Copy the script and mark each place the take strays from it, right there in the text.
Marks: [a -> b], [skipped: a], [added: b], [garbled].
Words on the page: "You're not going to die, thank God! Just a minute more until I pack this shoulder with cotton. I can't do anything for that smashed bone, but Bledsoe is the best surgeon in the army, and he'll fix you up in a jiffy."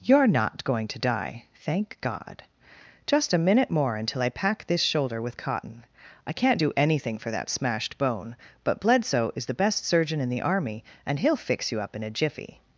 "You're not going to die, thank God! Just a minute more until I pack this shoulder with cotton. I can't do anything for that smashed bone, but Bledsoe is the best surgeon in the army, and he'll fix you up in a jiffy."